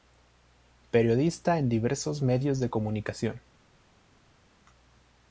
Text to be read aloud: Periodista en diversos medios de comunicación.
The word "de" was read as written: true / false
true